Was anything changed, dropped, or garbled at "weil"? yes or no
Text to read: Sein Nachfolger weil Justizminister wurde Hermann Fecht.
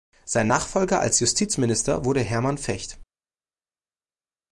yes